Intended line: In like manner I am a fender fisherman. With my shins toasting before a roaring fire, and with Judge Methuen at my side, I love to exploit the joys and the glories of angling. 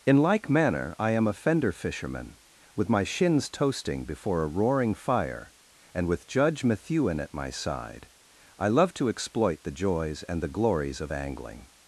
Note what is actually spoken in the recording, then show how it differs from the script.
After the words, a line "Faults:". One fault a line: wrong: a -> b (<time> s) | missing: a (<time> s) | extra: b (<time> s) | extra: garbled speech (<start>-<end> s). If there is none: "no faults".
In like manner I am a fender fisherman. With my shins toasting before a roaring fire, and with Judge Methuen at my side, I love to exploit the joys and the glories of angling.
Faults:
no faults